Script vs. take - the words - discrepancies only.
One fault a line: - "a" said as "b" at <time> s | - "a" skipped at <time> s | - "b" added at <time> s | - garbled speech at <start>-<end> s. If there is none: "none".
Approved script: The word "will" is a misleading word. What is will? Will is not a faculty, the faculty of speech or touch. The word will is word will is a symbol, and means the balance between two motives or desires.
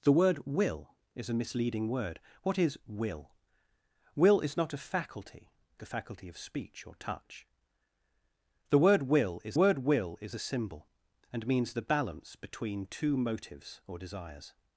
none